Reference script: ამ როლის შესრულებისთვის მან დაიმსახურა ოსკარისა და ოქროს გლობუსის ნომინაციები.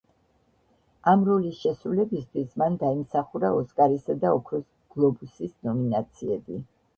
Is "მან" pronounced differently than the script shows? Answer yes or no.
no